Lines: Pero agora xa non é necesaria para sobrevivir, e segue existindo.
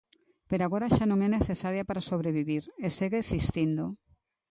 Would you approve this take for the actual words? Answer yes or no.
yes